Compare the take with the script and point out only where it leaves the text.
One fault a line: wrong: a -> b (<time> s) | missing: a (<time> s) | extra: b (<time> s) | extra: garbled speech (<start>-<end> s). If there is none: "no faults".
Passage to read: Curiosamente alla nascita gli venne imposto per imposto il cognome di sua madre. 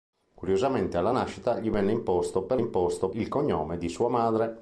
no faults